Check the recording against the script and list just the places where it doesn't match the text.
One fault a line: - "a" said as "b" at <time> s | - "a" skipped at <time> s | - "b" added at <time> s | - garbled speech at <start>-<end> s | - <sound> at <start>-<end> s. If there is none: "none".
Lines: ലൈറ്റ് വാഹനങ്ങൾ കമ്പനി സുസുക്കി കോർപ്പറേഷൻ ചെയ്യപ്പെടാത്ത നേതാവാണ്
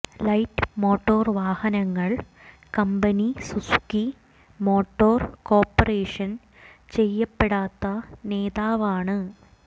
- "മോട്ടോർ" added at 0.8 s
- "മോട്ടോർ" added at 4.6 s